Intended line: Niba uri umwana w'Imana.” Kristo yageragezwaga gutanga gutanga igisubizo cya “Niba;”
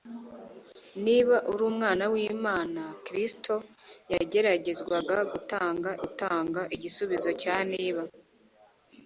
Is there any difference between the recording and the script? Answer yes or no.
no